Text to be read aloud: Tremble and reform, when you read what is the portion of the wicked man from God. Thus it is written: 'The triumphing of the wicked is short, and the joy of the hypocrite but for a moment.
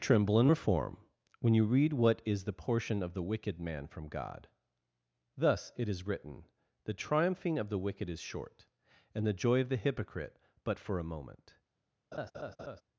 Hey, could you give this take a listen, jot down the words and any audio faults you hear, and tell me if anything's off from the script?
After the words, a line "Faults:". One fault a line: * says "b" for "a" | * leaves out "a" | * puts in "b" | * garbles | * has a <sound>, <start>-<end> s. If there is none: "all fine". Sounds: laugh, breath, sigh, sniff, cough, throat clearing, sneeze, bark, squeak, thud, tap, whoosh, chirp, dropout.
Tremble and reform, when you read what is the portion of the wicked man from God. Thus it is written: 'The triumphing of the wicked is short, and the joy of the hypocrite but for a moment.
Faults:
* has a laugh, 12.1-12.8 s